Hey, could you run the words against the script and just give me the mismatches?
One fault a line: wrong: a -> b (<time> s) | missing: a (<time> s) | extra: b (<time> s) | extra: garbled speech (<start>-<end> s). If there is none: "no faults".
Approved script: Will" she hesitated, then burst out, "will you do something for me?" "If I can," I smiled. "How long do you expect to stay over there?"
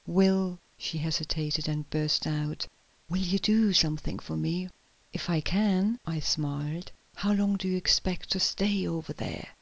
no faults